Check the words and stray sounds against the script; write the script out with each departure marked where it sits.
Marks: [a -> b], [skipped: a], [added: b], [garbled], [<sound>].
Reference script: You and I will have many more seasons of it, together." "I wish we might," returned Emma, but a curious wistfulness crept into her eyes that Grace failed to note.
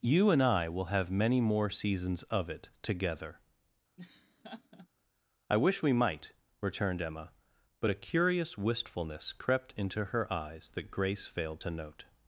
You and I will have many more seasons of it, together." [laugh] "I wish we might," returned Emma, but a curious wistfulness crept into her eyes that Grace failed to note.